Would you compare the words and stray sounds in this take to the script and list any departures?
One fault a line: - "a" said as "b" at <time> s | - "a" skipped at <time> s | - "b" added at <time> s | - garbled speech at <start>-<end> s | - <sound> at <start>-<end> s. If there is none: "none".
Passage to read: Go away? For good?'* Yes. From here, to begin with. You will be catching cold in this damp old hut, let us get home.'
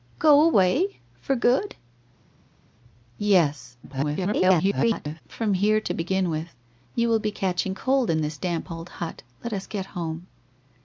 - garbled speech at 3.8-5.2 s